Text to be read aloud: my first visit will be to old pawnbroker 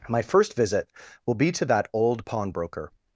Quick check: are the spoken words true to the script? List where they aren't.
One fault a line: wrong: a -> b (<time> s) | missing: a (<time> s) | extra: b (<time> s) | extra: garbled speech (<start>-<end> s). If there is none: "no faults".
extra: that (1.6 s)